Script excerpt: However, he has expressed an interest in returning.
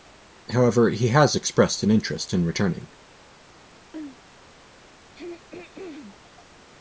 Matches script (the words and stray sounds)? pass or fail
fail